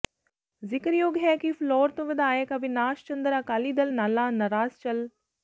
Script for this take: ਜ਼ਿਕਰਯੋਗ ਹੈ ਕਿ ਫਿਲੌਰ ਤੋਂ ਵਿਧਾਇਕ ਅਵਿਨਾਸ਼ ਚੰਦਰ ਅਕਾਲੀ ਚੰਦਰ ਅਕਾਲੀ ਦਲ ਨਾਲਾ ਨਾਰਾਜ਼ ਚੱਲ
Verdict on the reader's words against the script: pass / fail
fail